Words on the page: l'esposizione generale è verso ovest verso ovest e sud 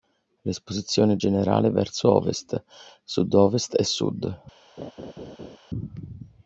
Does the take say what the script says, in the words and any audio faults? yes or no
no